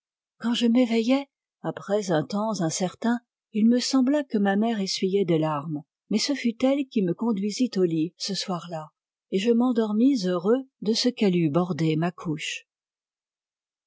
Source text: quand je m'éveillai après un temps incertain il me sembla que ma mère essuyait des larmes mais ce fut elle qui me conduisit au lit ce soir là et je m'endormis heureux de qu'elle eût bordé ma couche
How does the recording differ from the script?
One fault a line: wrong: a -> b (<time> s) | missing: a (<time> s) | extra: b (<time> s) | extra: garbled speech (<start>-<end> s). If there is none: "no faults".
extra: ce (10.9 s)